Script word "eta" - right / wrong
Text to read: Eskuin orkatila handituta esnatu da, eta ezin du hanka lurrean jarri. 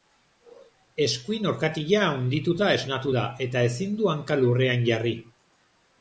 right